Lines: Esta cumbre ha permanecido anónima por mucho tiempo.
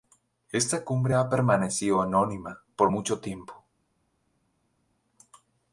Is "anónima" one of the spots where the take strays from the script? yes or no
no